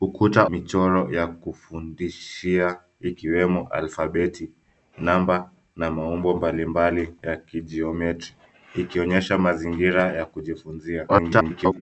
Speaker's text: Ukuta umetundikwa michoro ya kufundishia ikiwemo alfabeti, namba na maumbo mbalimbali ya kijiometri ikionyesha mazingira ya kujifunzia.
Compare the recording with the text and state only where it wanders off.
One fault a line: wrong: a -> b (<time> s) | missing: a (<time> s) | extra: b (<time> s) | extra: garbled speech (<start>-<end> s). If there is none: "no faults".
missing: umetundikwa (0.5 s)
extra: garbled speech (11.1-11.8 s)